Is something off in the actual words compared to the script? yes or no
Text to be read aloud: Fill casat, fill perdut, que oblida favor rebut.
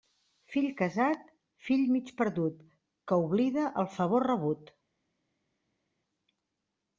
yes